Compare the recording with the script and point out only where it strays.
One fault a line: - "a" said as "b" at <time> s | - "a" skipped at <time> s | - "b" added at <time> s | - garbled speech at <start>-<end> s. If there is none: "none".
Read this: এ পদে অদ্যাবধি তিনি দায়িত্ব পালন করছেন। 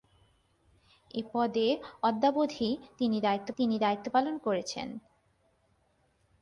- "তিনি দায়িত্ব" added at 3.6 s